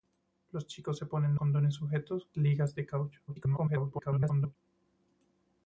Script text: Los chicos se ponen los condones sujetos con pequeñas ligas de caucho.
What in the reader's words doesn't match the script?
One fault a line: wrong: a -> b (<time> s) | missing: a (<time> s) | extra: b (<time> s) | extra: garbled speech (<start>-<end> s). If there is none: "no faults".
missing: los (1.4 s)
missing: con pequeñas (2.3 s)
extra: garbled speech (3.3-4.6 s)